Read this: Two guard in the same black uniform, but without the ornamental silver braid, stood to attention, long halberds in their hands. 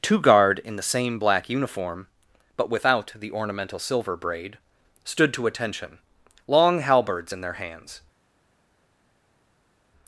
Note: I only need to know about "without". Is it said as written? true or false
true